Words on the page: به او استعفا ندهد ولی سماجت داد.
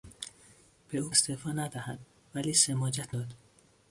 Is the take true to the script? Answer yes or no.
yes